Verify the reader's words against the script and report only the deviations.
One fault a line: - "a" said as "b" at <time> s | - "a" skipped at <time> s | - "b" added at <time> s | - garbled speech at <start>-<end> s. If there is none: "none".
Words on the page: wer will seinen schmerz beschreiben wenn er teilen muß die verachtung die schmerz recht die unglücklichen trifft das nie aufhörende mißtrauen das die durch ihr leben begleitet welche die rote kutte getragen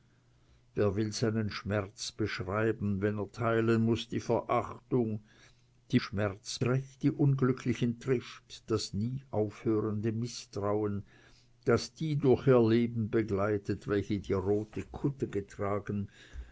none